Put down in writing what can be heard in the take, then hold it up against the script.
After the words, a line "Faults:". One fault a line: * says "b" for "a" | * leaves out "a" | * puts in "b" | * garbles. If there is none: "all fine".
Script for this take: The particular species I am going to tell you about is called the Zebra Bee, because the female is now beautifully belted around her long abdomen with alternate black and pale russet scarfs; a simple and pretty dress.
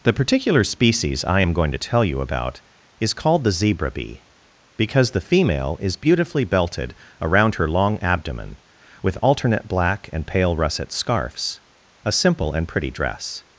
The particular species I am going to tell you about is called the Zebra Bee, because the female is beautifully belted around her long abdomen with alternate black and pale russet scarfs; a simple and pretty dress.
Faults:
* leaves out "now"